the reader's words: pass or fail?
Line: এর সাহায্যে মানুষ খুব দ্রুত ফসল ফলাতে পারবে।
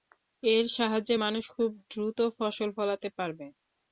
pass